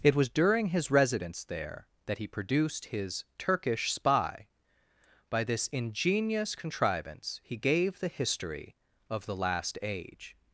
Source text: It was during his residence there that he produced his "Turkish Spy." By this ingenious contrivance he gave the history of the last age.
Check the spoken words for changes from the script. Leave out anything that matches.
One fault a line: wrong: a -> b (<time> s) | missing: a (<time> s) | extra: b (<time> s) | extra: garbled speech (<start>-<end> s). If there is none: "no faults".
no faults